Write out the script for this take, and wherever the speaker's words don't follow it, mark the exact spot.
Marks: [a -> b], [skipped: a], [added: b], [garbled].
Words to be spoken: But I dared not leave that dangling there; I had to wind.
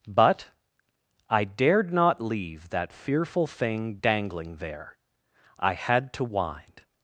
But I dared not leave that [added: fearful thing] dangling there; I had to wind.